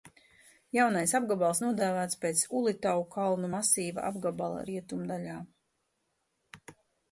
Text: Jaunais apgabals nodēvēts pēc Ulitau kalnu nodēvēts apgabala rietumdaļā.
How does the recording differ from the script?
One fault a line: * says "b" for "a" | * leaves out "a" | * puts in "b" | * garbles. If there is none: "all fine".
* says "masīva" for "nodēvēts"